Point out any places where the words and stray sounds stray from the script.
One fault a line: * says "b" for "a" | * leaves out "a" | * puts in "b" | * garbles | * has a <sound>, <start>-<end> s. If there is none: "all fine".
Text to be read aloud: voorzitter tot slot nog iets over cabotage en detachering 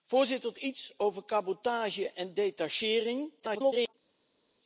* leaves out "tot slot nog"
* garbles